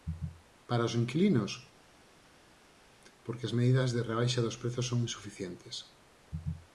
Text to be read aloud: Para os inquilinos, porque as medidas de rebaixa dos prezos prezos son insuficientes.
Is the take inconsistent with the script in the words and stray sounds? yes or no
yes